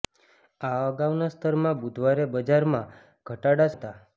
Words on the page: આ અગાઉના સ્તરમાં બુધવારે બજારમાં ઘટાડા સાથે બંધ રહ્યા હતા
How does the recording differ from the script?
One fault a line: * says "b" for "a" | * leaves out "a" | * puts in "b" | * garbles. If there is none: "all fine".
* leaves out "સાથે બંધ રહ્યા"